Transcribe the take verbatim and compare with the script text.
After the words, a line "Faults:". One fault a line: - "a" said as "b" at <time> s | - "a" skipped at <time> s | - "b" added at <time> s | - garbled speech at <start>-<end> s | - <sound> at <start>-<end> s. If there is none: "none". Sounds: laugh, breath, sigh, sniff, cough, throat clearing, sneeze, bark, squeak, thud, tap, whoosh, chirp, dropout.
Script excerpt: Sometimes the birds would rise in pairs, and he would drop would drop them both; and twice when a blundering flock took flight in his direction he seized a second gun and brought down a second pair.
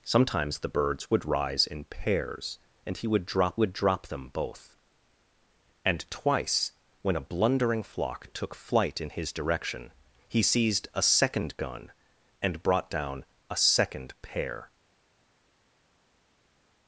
Sometimes the birds would rise in pairs, and he would drop would drop them both; and twice when a blundering flock took flight in his direction he seized a second gun and brought down a second pair.
Faults:
none